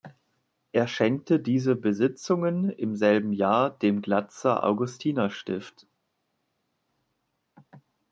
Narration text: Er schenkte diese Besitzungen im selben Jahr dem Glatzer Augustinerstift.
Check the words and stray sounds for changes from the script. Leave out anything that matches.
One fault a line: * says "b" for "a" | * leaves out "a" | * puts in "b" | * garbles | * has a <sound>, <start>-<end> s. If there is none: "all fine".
all fine